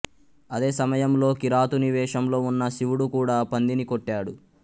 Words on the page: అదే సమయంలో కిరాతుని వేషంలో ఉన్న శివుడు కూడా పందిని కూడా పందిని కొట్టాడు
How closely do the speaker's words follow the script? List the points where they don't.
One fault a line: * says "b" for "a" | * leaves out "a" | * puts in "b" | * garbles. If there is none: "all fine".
* leaves out "కూడా పందిని"